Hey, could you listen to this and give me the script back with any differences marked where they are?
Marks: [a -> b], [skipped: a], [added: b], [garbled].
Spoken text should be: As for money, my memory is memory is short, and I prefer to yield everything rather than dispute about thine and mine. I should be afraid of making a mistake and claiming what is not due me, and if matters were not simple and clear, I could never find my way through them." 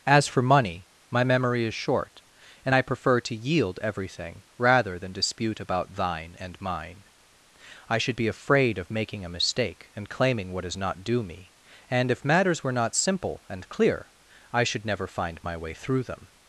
As for money, my memory is [skipped: memory is] short, and I prefer to yield everything rather than dispute about thine and mine. I should be afraid of making a mistake and claiming what is not due me, and if matters were not simple and clear, I [could -> should] never find my way through them."